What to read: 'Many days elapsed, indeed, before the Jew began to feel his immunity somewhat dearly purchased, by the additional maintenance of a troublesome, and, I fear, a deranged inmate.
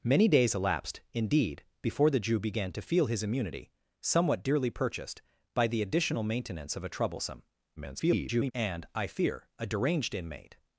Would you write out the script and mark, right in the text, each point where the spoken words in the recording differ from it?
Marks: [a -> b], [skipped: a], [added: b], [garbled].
'Many days elapsed, indeed, before the Jew began to feel his immunity somewhat dearly purchased, by the additional maintenance of a troublesome, [garbled] and, I fear, a deranged inmate.